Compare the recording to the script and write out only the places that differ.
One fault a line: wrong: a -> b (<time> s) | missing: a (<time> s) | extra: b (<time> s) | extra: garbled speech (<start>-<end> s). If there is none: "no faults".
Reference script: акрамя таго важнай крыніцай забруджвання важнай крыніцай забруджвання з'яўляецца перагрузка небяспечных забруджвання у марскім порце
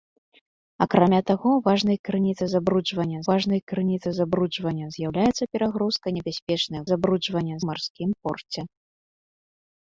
no faults